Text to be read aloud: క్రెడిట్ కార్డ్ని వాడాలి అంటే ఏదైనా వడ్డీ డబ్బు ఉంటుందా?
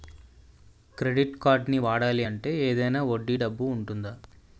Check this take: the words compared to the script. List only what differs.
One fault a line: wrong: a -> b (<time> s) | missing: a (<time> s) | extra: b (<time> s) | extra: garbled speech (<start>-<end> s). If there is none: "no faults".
no faults